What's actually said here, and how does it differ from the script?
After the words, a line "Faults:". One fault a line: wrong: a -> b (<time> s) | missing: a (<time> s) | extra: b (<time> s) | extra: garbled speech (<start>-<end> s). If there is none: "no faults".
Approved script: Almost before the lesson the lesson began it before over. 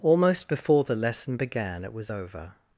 Almost before the lesson began it was over.
Faults:
missing: the lesson (1.4 s)
wrong: before -> was (1.9 s)